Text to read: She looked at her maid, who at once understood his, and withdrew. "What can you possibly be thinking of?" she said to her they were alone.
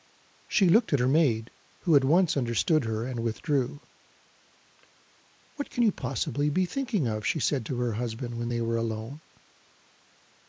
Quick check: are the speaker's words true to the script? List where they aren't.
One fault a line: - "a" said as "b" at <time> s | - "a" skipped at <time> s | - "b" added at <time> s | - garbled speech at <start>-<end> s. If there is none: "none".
- "his" said as "her" at 2.9 s
- "husband when" added at 7.9 s